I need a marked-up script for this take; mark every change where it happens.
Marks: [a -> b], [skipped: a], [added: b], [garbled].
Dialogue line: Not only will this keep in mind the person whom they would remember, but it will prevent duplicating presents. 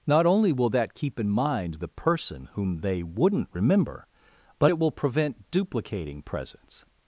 Not only will [this -> that] keep in mind the person whom they [would -> wouldn't] remember, but it will prevent duplicating presents.